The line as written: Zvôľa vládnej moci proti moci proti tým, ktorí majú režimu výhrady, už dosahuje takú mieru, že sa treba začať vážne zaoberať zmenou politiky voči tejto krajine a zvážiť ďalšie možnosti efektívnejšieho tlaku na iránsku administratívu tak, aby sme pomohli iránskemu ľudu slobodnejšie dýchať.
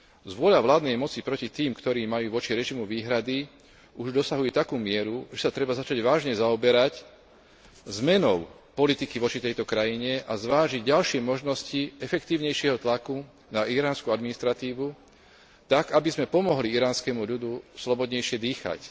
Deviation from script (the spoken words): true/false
true